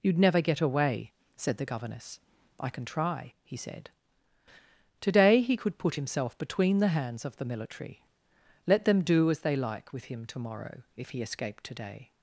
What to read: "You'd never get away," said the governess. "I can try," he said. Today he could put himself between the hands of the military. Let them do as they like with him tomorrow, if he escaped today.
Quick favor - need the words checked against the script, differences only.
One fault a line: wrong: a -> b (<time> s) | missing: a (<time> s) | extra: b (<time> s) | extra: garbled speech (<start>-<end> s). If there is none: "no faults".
no faults